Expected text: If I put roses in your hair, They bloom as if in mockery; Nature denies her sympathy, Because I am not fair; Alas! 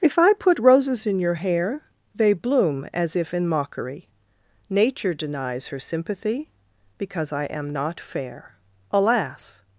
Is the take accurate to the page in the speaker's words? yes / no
yes